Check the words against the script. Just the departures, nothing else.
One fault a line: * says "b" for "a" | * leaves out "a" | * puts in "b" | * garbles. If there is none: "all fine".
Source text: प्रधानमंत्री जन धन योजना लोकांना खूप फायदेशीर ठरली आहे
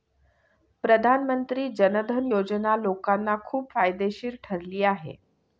all fine